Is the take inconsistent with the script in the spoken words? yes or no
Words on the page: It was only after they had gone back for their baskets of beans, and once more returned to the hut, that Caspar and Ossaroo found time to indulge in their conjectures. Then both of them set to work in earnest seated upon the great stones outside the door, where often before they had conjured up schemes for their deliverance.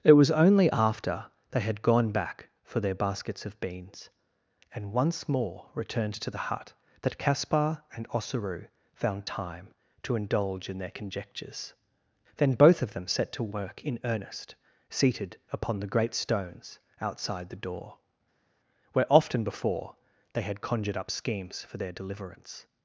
no